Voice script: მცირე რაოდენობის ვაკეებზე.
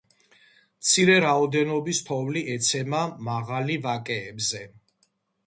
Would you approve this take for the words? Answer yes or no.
no